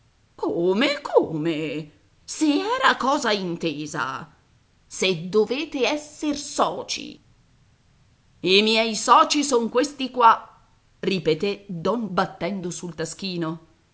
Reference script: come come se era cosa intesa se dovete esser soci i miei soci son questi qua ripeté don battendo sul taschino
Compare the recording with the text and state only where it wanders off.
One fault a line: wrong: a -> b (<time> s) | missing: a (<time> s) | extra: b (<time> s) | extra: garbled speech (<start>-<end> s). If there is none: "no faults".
no faults